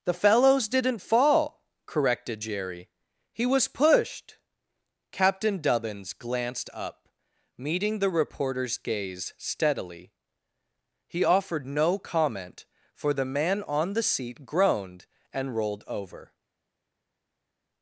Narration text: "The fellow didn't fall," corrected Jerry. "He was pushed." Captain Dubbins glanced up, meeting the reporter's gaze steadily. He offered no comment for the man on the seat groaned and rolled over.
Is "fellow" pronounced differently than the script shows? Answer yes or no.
yes